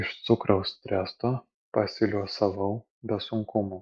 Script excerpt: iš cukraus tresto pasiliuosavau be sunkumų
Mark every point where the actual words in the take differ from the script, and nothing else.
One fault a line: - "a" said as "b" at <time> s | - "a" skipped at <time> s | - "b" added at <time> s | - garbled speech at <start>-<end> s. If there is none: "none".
none